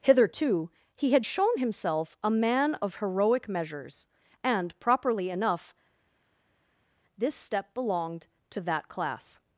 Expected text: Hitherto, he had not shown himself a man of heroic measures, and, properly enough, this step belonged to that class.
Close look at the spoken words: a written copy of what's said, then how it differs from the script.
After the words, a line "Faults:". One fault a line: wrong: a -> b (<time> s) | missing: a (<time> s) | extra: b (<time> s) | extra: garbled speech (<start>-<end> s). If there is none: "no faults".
Hitherto, he had shown himself a man of heroic measures, and, properly enough, this step belonged to that class.
Faults:
missing: not (1.2 s)